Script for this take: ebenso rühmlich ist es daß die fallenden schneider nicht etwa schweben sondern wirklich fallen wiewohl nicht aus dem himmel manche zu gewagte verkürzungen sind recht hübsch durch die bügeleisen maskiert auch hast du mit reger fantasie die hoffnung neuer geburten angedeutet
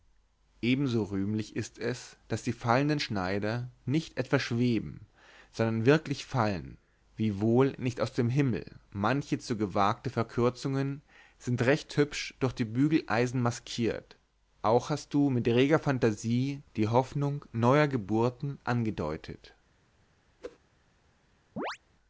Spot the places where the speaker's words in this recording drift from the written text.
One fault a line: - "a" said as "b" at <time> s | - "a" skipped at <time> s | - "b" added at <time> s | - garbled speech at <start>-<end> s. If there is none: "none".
none